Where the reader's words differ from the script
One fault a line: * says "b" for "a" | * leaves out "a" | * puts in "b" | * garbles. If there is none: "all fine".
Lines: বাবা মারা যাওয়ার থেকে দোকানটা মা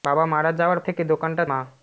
all fine